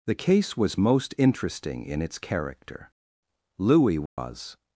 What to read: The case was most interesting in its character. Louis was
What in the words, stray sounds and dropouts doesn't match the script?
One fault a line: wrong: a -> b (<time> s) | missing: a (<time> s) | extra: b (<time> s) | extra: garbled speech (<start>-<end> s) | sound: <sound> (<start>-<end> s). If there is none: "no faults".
sound: dropout (4.1-4.2 s)